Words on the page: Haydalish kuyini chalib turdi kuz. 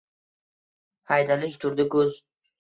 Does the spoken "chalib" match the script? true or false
false